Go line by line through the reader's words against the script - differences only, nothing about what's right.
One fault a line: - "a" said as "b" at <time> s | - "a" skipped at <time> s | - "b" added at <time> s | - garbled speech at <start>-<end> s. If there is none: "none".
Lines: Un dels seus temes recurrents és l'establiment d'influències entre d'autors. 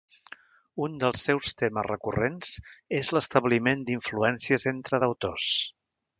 none